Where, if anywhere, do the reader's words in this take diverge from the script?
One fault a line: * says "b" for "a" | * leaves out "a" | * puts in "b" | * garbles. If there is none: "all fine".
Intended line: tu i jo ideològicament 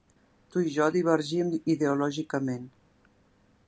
* puts in "divergim"